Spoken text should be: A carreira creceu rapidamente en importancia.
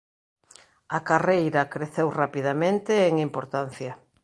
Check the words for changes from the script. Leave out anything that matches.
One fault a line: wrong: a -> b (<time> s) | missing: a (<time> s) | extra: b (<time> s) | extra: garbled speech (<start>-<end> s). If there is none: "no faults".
no faults